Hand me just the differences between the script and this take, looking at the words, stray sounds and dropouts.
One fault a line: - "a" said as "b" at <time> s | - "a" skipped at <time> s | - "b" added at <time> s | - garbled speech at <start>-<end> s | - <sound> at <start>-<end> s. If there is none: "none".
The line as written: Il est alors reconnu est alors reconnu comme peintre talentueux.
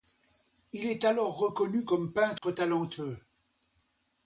- "est alors reconnu" skipped at 1.9 s
- dropout at 2.4-2.4 s